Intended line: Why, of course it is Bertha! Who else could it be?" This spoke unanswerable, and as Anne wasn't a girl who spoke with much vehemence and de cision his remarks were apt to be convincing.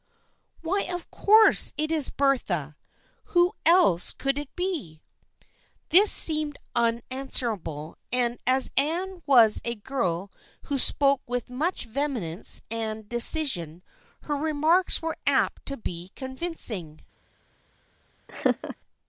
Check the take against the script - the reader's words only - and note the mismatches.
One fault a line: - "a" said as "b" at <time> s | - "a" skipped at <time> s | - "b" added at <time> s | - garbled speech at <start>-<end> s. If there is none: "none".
- "spoke" said as "seemed" at 6.1 s
- "wasn't" said as "was" at 9.3 s
- "his" said as "her" at 14.2 s